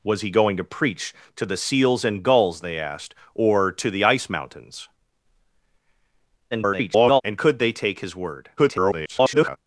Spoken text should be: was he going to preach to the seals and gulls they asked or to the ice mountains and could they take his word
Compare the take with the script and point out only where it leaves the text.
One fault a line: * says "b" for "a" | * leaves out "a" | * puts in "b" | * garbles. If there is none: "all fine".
* garbles
* garbles